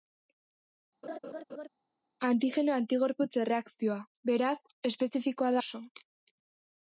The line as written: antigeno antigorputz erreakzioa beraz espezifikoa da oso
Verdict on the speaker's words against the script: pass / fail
fail